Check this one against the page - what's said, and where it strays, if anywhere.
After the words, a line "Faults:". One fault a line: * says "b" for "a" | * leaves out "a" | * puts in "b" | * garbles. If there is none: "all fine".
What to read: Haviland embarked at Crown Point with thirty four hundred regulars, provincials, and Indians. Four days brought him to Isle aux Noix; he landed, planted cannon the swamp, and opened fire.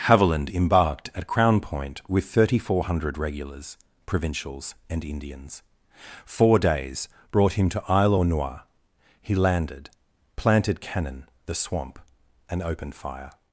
Haviland embarked at Crown Point with thirty four hundred regulars, provincials, and Indians. Four days brought him to Isle aux Noix; he landed, planted cannon the swamp, and opened fire.
Faults:
all fine